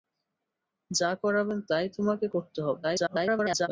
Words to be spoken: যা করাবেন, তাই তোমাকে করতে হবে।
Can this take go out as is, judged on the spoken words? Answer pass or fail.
fail